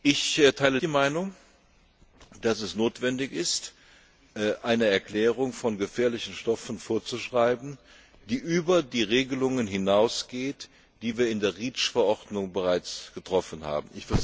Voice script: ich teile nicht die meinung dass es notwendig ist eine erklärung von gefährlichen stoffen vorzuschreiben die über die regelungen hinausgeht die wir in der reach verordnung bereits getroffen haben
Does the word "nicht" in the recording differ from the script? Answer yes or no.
yes